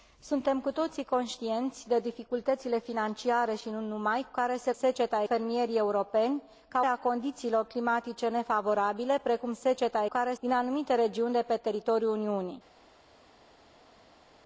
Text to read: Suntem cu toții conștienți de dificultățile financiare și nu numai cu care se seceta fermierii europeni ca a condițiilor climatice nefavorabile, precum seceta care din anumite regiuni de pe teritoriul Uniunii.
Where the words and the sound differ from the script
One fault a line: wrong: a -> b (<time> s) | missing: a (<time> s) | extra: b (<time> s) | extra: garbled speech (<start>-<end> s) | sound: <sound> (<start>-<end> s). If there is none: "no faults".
no faults